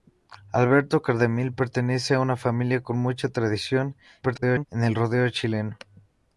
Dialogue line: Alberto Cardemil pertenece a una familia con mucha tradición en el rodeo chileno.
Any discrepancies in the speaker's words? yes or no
yes